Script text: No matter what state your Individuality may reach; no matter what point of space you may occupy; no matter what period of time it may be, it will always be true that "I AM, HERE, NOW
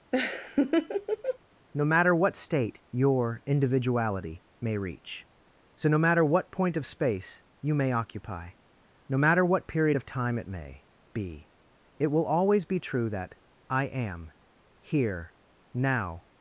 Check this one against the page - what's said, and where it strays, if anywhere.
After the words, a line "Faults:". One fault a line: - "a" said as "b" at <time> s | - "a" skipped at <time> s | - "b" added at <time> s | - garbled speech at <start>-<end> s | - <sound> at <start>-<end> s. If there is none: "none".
No matter what state your Individuality may reach; so no matter what point of space you may occupy; no matter what period of time it may be, it will always be true that "I AM, HERE, NOW
Faults:
- laugh at 0.1-1.4 s
- "so" added at 5.7 s